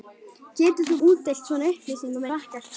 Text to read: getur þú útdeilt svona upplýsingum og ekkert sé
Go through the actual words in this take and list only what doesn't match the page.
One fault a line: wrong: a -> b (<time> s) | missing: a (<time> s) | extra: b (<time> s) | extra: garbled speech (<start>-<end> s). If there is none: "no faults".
no faults